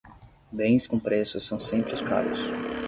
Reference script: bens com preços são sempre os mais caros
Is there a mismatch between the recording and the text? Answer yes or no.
yes